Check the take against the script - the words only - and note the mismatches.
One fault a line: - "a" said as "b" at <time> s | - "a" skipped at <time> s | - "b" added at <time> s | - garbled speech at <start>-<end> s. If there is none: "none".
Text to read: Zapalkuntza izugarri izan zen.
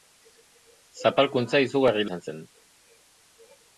none